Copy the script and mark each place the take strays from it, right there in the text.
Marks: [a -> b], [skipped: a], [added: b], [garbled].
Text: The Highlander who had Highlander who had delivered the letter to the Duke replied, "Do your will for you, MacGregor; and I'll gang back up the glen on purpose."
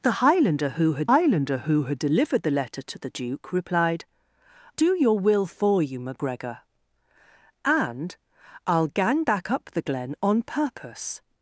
The Highlander who had Highlander who had delivered the letter to the Duke replied, "Do your will for you, MacGregor; and I'll gang back up the glen on purpose."